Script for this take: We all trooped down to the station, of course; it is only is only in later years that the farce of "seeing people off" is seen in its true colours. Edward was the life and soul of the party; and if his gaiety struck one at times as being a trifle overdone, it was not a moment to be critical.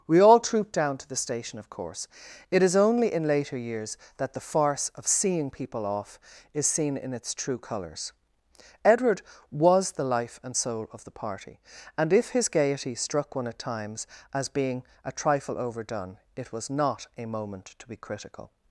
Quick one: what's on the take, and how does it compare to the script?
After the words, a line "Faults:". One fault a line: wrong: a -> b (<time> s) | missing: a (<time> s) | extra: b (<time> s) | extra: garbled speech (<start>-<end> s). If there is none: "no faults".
We all trooped down to the station, of course; it is only in later years that the farce of "seeing people off" is seen in its true colours. Edward was the life and soul of the party; and if his gaiety struck one at times as being a trifle overdone, it was not a moment to be critical.
Faults:
missing: is only (3.1 s)